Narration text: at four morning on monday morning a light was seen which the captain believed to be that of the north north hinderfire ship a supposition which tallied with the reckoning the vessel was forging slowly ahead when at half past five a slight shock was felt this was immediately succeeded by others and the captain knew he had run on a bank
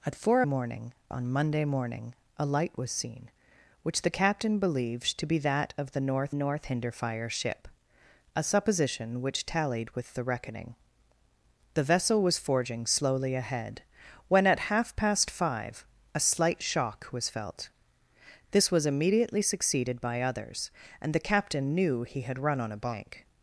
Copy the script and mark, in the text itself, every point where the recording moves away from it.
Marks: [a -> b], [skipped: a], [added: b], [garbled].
at four morning on monday morning a light was seen which the captain believed to be that of the north north hinderfire ship a supposition which tallied with the reckoning the vessel was forging slowly ahead when at half past five a slight shock was felt this was immediately succeeded by others and the captain knew he had run on a bank